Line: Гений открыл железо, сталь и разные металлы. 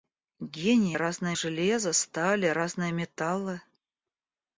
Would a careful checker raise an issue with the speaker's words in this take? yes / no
yes